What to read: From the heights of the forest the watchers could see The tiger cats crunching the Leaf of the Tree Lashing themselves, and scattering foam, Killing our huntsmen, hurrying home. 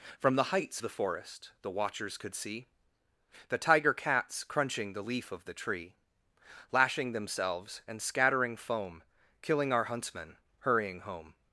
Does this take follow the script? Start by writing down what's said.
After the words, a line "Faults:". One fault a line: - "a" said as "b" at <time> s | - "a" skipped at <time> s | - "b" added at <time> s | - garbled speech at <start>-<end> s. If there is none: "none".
From the heights the forest the watchers could see The tiger cats crunching the Leaf of the Tree Lashing themselves, and scattering foam, Killing our huntsmen, hurrying home.
Faults:
- "of" skipped at 0.8 s